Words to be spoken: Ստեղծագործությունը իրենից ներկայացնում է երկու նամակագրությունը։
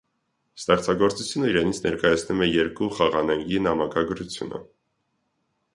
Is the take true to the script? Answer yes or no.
no